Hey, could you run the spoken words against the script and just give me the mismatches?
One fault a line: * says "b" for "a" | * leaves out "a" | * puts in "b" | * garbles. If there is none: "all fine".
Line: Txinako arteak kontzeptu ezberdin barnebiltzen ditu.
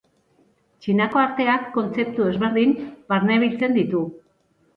all fine